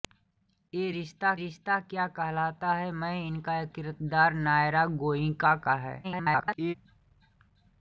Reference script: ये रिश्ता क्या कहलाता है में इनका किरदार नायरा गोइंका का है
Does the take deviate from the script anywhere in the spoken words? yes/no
yes